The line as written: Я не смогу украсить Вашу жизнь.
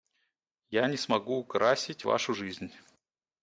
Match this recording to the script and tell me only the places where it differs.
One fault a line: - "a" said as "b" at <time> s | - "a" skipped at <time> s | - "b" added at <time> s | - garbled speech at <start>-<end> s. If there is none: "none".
none